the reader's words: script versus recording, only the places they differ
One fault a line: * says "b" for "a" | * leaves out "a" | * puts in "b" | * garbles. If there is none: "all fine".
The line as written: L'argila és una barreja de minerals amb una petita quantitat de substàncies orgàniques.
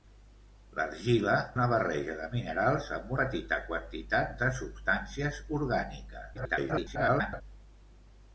* leaves out "és"
* leaves out "una"
* garbles